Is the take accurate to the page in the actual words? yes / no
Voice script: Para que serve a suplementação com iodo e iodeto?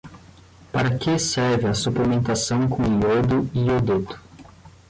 yes